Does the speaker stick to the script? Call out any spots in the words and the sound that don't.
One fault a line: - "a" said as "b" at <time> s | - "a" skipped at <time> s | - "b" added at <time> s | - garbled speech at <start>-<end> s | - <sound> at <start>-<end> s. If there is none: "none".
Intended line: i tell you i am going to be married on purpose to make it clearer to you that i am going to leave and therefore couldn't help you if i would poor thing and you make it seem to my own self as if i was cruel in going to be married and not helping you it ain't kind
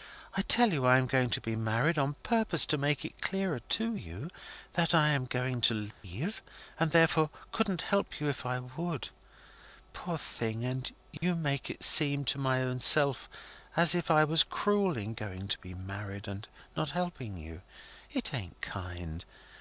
- dropout at 5.9-6.0 s
- dropout at 11.2-11.2 s